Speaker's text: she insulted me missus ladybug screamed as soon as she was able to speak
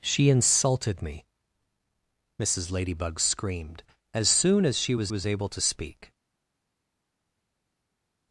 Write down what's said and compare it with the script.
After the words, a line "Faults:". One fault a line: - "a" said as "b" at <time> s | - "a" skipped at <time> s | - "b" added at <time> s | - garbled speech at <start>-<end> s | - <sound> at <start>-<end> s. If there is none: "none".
she insulted me missus ladybug screamed as soon as she was was able to speak
Faults:
- "was" added at 5.1 s